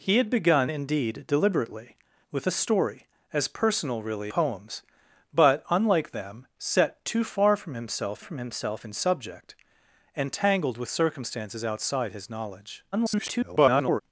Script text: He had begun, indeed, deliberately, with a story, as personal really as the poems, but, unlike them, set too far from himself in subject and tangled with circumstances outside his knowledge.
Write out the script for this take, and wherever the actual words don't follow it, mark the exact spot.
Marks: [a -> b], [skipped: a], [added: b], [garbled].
He had begun, indeed, deliberately, with a story, as personal really [skipped: as the] poems, but, unlike them, set too far from himself [added: from himself] in subject and tangled with circumstances outside his knowledge. [garbled]